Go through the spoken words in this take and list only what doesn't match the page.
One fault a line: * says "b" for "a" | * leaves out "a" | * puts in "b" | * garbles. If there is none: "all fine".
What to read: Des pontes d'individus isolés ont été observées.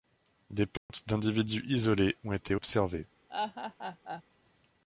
all fine